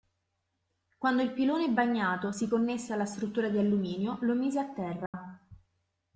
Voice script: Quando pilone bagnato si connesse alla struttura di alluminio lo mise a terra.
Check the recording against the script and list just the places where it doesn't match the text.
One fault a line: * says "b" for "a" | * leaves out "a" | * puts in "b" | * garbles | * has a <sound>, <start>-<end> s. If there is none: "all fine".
* puts in "il"
* has a dropout, 5.1-5.1 s